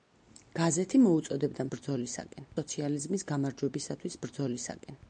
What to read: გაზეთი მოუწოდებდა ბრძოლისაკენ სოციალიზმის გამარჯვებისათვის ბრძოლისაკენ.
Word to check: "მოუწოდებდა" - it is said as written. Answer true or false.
true